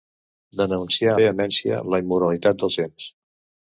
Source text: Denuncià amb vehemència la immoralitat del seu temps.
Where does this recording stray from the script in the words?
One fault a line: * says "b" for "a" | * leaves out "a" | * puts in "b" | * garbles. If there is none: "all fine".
* leaves out "amb"
* leaves out "seu"